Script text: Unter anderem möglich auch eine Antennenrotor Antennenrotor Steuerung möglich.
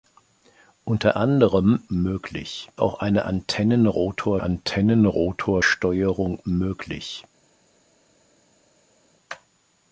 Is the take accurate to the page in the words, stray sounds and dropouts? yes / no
yes